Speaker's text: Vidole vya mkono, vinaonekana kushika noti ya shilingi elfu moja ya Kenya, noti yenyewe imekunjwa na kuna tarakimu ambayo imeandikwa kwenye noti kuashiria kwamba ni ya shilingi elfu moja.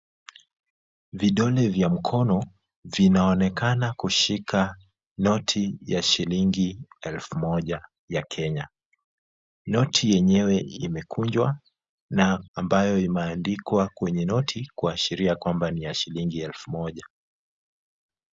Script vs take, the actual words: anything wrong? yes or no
yes